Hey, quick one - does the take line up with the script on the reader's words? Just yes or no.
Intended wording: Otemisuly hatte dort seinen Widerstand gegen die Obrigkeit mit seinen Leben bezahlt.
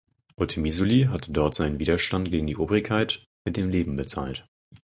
no